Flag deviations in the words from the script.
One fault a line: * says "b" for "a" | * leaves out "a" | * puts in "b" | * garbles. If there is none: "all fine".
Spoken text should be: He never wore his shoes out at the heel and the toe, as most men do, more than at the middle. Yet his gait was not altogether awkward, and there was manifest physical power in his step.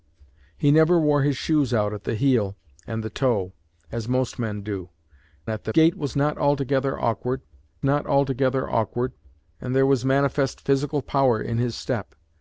* leaves out "more than"
* says "gait was not altogether awkward" for "middle Yet his gait was"